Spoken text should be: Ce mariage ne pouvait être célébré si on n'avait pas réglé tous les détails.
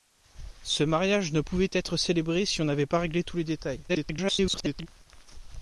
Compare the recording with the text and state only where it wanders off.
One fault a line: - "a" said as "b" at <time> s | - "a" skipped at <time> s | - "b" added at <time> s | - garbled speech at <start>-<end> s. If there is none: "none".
- garbled speech at 3.9-4.9 s